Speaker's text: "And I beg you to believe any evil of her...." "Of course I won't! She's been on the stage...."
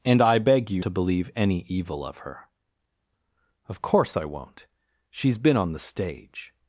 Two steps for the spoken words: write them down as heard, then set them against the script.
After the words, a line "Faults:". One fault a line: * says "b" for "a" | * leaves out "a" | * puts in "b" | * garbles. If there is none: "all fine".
"And I beg you to believe any evil of her...." "Of course I won't! She's been on the stage...."
Faults:
all fine